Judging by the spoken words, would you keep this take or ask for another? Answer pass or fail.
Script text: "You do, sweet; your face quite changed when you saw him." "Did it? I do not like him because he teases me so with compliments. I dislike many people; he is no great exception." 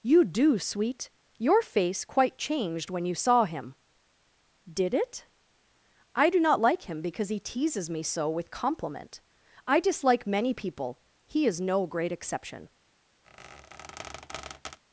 fail